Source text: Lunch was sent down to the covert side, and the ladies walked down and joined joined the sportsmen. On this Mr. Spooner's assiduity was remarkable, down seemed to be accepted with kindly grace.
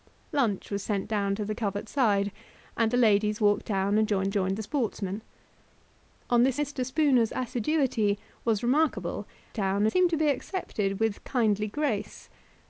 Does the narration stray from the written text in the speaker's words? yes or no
no